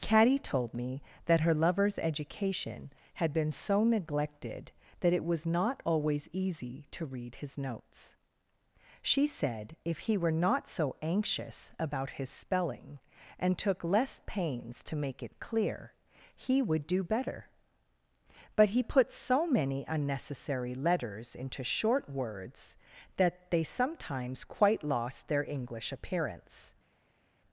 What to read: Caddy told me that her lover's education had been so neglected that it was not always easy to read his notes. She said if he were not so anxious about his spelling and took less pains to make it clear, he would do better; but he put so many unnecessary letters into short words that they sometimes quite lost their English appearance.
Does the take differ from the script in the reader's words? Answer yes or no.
no